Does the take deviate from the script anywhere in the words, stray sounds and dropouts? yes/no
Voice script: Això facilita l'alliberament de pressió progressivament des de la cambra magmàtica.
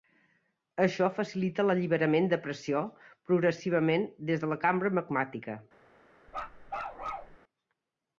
yes